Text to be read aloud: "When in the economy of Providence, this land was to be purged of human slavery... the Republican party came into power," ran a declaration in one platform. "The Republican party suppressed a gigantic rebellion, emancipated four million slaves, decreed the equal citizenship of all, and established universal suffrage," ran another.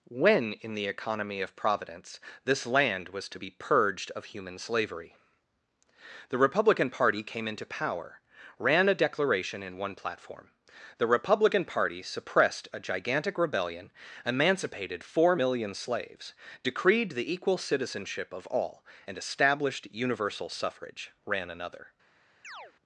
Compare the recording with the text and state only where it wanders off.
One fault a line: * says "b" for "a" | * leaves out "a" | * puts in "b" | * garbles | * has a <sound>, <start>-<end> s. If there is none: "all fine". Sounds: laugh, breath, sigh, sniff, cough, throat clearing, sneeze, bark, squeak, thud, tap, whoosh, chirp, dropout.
* has a chirp, 22.4-22.7 s